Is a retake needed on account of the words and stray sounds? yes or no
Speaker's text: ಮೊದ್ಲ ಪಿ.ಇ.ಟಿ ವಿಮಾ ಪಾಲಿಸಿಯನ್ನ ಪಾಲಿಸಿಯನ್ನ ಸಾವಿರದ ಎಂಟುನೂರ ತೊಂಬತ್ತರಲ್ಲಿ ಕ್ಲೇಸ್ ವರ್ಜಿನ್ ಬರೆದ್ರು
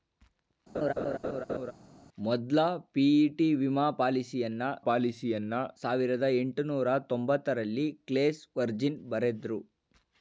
yes